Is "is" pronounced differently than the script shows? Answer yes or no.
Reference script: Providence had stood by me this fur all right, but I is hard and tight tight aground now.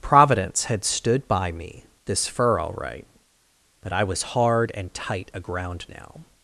yes